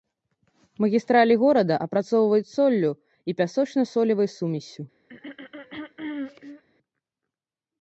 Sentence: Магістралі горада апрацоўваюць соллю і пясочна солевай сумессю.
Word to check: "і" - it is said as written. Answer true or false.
true